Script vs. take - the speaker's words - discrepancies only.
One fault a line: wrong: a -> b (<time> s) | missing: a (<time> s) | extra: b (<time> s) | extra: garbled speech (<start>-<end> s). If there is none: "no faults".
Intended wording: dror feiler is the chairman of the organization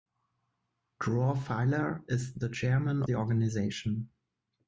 missing: of (3.0 s)